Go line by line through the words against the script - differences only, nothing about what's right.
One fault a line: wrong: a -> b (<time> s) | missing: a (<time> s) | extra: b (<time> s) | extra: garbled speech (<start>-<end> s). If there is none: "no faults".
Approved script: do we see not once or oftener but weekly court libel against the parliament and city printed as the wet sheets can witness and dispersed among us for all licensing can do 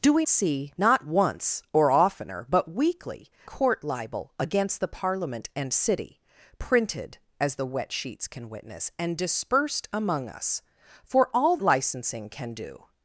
no faults